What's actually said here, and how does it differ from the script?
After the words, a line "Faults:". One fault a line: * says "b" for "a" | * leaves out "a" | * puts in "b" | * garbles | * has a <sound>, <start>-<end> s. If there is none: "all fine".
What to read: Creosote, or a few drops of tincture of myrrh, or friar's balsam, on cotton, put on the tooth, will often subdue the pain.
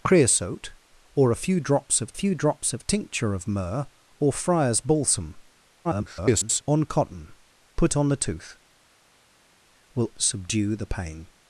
Creosote, or a few drops of few drops of tincture of myrrh, or friar's balsam, [garbled] on cotton, put on the tooth, will subdue the pain.
Faults:
* puts in "few drops of"
* garbles
* leaves out "often"